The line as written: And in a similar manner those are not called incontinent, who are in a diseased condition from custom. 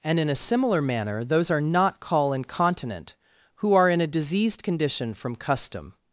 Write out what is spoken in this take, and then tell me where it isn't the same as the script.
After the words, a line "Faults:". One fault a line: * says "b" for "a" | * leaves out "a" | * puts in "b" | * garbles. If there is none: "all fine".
And in a similar manner those are not call incontinent, who are in a diseased condition from custom.
Faults:
* says "call" for "called"